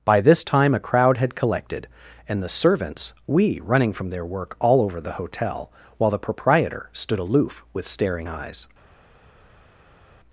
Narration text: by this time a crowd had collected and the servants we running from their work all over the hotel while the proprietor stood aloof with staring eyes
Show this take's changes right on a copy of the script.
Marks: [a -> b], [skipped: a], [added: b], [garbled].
by this time a crowd had collected and the servants we running from their work all over the hotel while the proprietor stood aloof with staring eyes